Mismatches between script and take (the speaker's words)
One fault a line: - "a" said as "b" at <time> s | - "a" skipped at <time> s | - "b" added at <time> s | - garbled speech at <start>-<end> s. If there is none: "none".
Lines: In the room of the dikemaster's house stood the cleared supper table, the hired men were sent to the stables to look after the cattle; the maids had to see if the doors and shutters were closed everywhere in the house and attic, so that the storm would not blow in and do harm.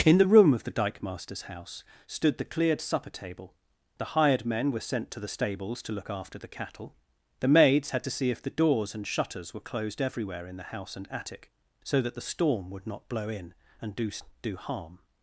- "do" added at 14.4 s